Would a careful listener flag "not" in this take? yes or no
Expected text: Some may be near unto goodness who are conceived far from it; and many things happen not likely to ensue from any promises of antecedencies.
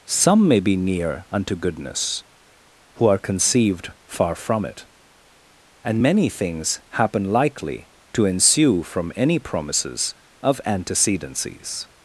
yes